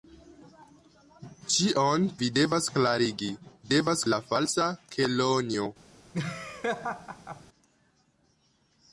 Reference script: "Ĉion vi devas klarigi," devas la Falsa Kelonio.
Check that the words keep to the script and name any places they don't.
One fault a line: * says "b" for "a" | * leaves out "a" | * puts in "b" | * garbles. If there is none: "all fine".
all fine